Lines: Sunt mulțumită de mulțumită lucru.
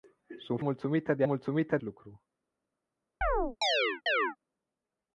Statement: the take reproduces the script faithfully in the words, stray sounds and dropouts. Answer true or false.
false